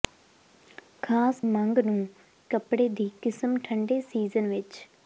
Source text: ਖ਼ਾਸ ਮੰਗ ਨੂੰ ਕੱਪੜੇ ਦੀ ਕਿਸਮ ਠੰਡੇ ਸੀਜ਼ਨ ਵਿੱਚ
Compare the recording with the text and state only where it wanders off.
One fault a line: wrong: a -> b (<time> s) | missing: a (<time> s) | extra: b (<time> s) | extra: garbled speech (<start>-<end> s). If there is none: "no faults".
no faults